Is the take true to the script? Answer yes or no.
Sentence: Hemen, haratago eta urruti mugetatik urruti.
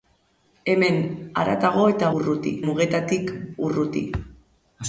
yes